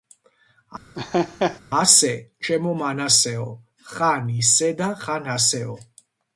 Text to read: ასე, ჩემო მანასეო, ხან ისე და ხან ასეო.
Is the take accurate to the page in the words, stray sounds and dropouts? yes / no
no